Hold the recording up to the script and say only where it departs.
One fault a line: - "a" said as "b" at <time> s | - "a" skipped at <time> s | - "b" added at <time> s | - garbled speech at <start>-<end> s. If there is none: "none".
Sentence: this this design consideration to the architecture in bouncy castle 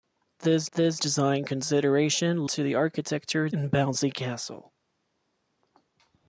none